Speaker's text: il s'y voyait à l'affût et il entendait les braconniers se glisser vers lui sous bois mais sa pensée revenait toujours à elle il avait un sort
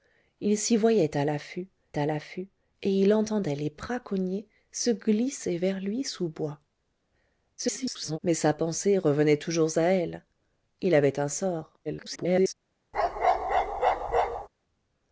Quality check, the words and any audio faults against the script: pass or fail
fail